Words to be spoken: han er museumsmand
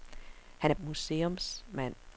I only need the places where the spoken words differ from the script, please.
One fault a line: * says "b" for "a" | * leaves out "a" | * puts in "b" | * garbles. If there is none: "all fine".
all fine